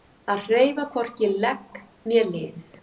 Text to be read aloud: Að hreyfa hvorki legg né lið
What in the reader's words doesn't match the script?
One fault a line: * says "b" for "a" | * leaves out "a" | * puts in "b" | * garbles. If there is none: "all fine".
all fine